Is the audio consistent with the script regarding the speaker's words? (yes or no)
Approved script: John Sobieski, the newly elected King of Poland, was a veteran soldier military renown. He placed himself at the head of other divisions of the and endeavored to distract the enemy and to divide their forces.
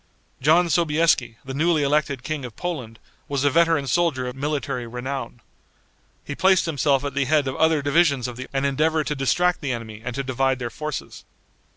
yes